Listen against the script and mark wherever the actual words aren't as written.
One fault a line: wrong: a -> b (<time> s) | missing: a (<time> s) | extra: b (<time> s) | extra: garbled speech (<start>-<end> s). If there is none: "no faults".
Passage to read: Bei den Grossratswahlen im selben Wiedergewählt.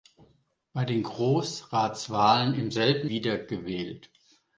no faults